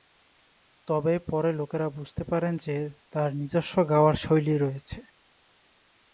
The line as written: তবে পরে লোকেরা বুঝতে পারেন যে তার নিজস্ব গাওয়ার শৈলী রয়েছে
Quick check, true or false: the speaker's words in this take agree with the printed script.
true